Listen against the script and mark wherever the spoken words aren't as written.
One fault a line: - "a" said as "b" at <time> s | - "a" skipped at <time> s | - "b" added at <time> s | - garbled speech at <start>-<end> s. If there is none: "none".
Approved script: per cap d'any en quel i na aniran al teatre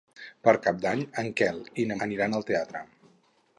none